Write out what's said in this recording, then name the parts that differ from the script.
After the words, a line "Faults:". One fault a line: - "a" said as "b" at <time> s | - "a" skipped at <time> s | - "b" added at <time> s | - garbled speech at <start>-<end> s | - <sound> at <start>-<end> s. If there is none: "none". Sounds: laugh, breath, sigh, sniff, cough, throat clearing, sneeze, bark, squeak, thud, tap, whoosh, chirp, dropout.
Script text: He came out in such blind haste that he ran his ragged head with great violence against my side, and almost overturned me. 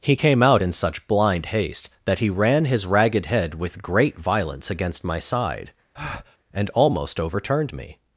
He came out in such blind haste that he ran his ragged head with great violence against my side, and almost overturned me.
Faults:
- breath at 5.9-6.4 s